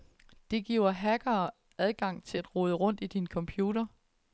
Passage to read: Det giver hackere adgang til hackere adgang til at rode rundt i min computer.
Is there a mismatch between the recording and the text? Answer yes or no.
yes